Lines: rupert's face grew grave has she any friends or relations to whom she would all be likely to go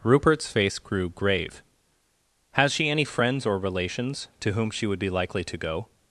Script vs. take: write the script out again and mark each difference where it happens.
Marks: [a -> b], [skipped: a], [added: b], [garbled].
rupert's face grew grave has she any friends or relations to whom she would [skipped: all] be likely to go